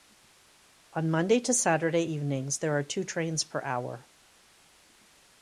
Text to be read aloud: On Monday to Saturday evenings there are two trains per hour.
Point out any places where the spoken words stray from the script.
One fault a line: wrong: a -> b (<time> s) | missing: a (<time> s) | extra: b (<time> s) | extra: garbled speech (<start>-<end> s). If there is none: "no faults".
no faults